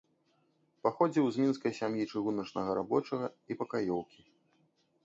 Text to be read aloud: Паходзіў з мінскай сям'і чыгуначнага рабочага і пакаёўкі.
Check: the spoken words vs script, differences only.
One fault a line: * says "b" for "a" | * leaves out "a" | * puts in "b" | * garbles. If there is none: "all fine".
all fine